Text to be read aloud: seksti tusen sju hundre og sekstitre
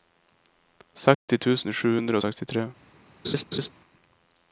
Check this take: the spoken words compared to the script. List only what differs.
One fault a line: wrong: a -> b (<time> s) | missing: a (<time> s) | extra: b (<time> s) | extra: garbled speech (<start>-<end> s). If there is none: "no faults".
no faults